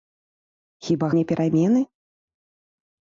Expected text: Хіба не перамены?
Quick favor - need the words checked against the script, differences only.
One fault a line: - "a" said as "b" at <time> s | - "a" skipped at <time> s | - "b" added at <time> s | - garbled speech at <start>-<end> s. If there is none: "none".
none